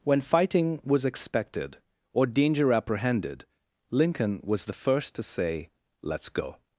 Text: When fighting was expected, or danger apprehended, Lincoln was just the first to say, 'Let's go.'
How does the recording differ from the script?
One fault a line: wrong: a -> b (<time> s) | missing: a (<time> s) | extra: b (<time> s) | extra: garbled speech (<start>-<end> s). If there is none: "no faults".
missing: just (4.7 s)